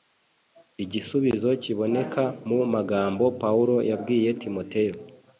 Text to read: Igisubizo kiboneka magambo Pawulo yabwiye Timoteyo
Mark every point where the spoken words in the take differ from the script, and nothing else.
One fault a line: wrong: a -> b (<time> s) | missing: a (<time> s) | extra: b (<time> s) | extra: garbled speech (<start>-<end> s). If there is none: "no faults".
extra: mu (2.5 s)